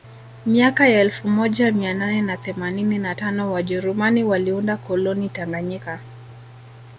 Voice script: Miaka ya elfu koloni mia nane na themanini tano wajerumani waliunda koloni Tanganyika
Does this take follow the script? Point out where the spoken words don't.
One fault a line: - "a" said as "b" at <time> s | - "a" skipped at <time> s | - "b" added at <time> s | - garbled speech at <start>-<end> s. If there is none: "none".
- "koloni" said as "moja" at 1.3 s
- "na" added at 3.0 s